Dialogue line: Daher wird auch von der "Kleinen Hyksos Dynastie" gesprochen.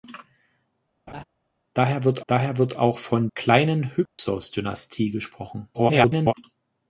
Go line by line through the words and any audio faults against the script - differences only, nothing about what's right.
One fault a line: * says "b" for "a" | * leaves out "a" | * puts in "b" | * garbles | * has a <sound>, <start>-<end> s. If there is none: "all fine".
* has a laugh, 1.1-1.2 s
* puts in "daher wird"
* leaves out "der"
* has a dropout, 4.1-4.2 s
* garbles